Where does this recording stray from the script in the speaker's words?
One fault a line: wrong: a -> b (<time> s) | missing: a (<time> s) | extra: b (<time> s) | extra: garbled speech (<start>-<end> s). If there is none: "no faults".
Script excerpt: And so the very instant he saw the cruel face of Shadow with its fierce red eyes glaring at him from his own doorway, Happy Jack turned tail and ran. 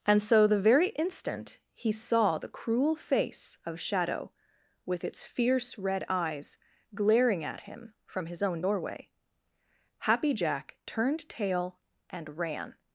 no faults